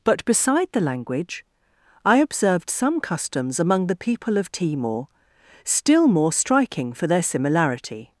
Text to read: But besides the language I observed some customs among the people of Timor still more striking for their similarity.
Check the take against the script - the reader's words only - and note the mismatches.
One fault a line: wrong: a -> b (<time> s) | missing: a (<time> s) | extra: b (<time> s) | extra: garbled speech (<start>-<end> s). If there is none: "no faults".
wrong: besides -> beside (0.2 s)